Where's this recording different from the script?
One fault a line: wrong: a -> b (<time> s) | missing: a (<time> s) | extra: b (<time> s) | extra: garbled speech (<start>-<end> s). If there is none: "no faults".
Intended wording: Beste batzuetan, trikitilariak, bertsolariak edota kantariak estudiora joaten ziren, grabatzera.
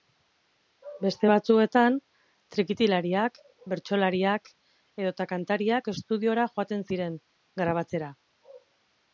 no faults